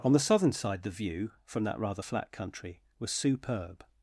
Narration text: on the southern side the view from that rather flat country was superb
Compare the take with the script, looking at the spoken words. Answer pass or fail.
pass